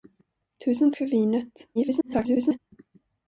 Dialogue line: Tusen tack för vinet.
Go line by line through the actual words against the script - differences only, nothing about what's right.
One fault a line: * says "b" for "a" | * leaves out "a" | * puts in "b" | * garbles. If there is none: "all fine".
* leaves out "tack"
* garbles